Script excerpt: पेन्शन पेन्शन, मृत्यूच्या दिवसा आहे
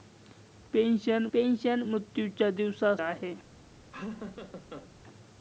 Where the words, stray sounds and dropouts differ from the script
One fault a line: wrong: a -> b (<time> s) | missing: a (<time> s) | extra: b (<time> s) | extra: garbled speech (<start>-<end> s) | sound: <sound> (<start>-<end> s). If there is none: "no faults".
sound: laugh (3.9-4.9 s)